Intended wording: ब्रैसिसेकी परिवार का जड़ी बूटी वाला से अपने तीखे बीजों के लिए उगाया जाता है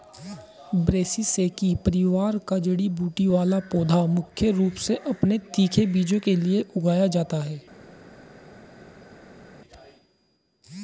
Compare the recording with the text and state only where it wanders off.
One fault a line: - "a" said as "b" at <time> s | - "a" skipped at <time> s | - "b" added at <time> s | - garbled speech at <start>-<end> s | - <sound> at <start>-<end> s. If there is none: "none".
- "पौधा मुख्य रूप" added at 3.7 s